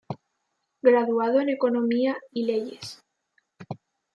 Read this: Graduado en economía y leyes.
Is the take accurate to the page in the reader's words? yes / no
yes